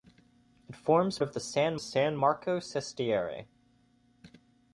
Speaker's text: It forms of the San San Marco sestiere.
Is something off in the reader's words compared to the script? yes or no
no